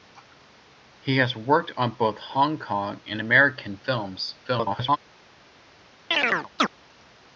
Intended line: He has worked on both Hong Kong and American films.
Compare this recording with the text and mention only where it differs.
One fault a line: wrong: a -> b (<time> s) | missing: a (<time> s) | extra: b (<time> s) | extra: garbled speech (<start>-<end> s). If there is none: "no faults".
extra: garbled speech (4.4-5.0 s)